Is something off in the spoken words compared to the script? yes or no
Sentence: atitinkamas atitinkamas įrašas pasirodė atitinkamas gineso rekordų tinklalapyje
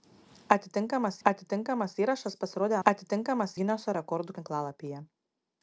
no